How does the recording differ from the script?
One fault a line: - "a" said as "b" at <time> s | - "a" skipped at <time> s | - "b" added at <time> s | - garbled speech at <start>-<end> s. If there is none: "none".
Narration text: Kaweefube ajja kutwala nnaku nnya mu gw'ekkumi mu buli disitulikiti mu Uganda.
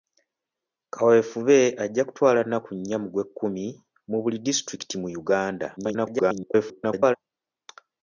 - garbled speech at 5.8-7.2 s